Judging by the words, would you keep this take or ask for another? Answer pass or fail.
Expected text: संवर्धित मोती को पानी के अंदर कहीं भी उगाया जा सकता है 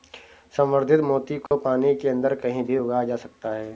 pass